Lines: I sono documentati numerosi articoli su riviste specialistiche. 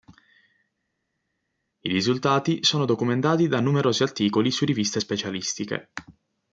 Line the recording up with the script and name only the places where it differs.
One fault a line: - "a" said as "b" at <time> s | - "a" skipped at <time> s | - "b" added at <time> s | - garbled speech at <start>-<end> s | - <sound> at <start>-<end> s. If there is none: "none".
- "risultati" added at 1.9 s
- "da" added at 3.5 s